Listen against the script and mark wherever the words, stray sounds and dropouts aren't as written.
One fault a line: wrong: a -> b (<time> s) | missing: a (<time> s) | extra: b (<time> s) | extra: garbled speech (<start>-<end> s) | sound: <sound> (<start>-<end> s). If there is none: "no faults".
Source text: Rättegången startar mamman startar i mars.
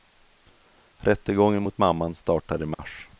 wrong: startar -> mot (1.6 s)
sound: dropout (2.7-2.8 s)